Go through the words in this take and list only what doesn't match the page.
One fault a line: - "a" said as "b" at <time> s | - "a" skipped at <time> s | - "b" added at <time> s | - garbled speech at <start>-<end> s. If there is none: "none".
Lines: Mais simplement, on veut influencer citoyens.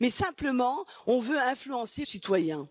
none